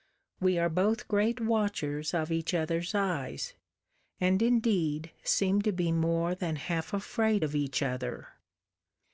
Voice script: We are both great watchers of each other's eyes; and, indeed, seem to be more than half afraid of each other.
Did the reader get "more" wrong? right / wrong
right